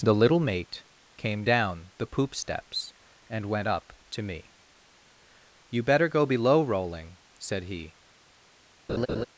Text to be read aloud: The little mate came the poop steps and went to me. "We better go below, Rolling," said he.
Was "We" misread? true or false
true